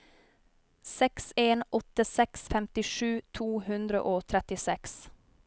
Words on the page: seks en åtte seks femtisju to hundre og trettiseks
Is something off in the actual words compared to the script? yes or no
no